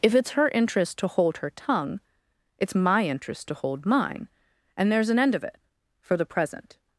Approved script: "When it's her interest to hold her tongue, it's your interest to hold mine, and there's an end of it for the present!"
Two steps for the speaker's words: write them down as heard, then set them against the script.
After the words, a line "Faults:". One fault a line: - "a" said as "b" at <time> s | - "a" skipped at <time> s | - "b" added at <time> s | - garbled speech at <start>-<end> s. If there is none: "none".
"If it's her interest to hold her tongue, it's my interest to hold mine, and there's an end of it for the present!"
Faults:
- "When" said as "If" at 0.0 s
- "your" said as "my" at 2.8 s